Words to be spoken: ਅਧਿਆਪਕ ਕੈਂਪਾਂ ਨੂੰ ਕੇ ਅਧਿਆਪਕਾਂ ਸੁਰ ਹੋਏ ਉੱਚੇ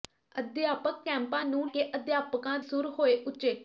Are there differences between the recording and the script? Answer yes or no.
no